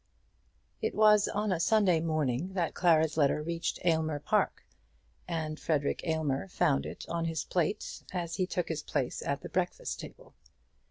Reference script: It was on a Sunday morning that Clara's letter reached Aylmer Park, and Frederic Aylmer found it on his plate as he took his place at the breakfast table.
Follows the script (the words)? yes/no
yes